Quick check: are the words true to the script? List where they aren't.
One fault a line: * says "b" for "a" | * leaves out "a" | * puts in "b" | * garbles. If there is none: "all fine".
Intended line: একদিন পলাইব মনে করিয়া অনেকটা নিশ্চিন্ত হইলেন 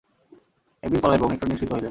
* leaves out "মনে করিয়া"